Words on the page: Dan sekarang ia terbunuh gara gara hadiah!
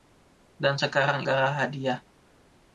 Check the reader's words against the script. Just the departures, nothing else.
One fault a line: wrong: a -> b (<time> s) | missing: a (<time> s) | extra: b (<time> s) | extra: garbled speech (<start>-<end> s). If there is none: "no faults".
missing: ia terbunuh gara (1.3 s)